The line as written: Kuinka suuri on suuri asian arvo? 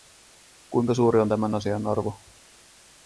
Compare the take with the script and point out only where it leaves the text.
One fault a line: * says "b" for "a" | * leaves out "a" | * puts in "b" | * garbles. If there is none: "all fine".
* says "tämän" for "suuri"